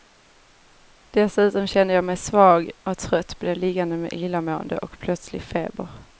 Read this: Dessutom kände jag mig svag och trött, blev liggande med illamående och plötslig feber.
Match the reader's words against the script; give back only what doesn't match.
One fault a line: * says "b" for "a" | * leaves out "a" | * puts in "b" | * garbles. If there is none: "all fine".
all fine